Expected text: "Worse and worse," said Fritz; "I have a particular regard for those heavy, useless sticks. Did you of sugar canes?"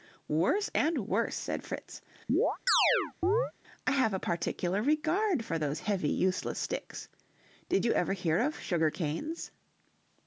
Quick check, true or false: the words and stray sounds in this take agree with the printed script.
false